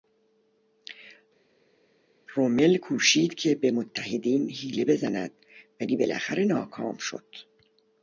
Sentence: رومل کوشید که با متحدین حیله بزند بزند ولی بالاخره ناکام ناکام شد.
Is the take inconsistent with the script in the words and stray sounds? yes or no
yes